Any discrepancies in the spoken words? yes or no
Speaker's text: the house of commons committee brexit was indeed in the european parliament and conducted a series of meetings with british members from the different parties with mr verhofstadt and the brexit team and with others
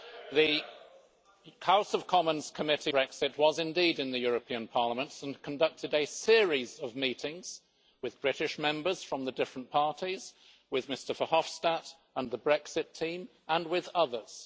no